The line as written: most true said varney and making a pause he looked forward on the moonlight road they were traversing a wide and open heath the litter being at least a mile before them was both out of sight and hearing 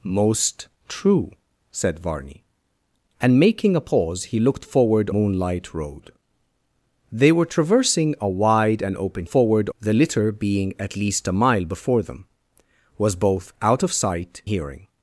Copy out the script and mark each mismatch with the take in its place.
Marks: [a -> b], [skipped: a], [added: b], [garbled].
most true said varney and making a pause he looked forward [skipped: on the] moonlight road they were traversing a wide and open [heath -> forward] the litter being at least a mile before them was both out of sight [skipped: and] hearing